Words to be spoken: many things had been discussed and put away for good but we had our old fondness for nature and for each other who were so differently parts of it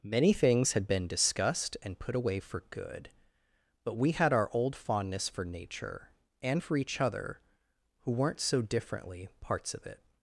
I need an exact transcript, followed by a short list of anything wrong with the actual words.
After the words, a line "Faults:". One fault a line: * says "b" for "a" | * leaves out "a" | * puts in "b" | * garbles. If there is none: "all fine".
many things had been discussed and put away for good but we had our old fondness for nature and for each other who weren't so differently parts of it
Faults:
* says "weren't" for "were"